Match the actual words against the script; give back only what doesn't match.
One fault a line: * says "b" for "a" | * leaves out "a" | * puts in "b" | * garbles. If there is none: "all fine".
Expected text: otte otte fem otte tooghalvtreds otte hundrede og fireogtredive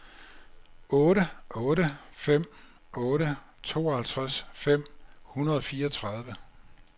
* says "fem" for "otte"